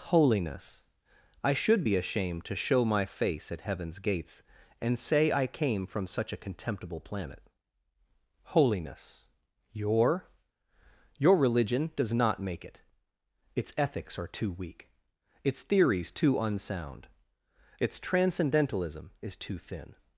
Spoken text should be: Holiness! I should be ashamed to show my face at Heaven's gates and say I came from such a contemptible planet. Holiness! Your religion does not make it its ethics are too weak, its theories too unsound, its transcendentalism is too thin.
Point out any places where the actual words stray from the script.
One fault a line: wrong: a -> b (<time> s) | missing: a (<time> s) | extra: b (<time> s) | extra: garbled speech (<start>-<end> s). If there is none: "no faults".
extra: Your (11.2 s)